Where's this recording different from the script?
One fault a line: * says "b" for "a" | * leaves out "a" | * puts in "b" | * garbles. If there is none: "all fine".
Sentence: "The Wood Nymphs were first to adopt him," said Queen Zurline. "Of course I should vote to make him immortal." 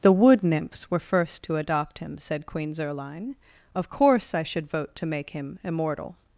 all fine